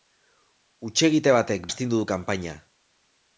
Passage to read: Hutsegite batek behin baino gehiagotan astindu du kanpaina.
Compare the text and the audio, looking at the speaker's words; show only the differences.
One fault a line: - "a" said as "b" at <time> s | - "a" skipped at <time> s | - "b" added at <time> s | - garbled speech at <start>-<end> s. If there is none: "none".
- "behin baino gehiagotan" skipped at 1.7 s